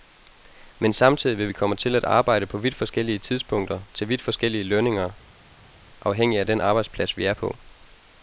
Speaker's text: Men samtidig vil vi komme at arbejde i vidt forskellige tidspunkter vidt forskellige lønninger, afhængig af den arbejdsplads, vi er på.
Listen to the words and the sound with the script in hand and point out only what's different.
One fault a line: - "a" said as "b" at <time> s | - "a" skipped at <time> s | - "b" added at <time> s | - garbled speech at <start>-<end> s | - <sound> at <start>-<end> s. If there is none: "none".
- "til" added at 1.8 s
- "i" said as "på" at 2.5 s
- "til" added at 3.9 s